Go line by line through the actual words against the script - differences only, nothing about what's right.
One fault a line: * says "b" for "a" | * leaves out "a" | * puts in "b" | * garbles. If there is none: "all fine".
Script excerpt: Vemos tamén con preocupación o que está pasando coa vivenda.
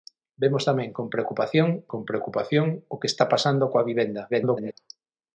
* puts in "con preocupación"
* garbles